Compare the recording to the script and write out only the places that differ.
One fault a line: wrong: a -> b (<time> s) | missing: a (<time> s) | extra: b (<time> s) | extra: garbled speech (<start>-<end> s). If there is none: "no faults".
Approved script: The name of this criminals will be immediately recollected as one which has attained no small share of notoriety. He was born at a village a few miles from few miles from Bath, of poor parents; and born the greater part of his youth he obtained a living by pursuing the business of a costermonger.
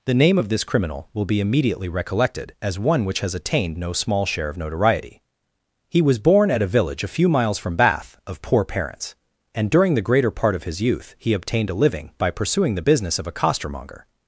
wrong: criminals -> criminal (0.6 s)
missing: few miles from (7.8 s)
wrong: born -> during (9.7 s)